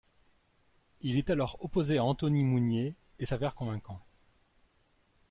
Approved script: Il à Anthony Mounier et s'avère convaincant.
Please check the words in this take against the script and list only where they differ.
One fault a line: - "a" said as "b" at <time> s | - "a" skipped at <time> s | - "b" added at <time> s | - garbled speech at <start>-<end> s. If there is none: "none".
- "est alors opposé" added at 1.1 s